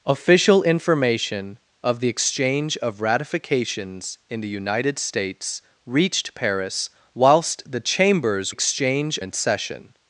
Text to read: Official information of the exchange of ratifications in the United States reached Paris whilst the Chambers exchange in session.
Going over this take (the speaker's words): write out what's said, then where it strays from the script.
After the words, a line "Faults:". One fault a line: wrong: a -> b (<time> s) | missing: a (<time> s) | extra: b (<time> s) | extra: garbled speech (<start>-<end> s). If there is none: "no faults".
Official information of the exchange of ratifications in the United States reached Paris whilst the Chambers exchange in session.
Faults:
no faults